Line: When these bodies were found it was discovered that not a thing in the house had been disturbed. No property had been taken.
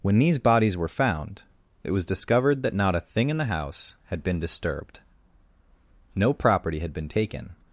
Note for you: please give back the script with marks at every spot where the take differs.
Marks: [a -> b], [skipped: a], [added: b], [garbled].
When these bodies were found it was discovered that not a thing in the house had been disturbed. No property had been taken.